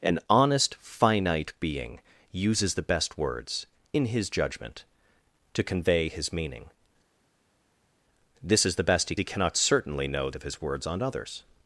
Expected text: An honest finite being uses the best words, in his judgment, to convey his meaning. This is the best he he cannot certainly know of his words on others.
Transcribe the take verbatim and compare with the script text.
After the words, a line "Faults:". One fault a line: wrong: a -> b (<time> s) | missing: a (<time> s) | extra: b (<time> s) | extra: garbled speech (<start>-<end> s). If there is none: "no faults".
An honest finite being uses the best words, in his judgment, to convey his meaning. This is the best he he cannot certainly know of his words on others.
Faults:
no faults